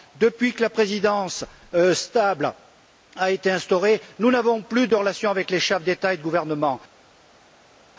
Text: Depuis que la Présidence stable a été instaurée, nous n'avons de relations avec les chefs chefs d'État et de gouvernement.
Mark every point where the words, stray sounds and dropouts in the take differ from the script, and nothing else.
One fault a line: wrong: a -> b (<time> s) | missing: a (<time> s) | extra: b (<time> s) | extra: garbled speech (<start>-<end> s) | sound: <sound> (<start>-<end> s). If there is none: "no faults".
extra: plus (4.6 s)
missing: chefs (5.8 s)